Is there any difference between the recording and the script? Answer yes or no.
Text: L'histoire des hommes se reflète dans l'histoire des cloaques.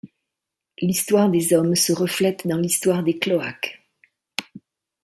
no